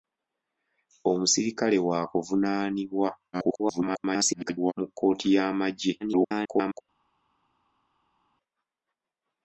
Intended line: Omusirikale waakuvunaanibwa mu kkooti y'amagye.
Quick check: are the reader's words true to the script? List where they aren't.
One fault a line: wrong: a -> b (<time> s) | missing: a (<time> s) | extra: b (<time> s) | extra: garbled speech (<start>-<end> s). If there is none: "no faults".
extra: garbled speech (3.3-4.7 s)
extra: garbled speech (6.0-6.8 s)